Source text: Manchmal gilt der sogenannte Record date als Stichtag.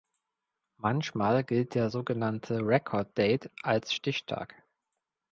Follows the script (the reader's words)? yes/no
yes